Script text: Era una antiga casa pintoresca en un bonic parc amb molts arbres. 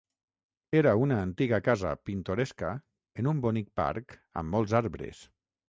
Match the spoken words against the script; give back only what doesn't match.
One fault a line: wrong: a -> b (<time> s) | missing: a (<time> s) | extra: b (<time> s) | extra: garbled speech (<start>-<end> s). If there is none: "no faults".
no faults